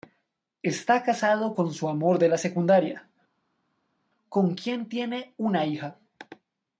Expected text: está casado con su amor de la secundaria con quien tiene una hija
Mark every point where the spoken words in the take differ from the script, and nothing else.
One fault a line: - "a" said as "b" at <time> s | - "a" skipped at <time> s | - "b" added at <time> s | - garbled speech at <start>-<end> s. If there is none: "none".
none